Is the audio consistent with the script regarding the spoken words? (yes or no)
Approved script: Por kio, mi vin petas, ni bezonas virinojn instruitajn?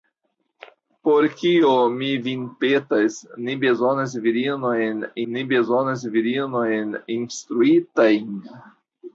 no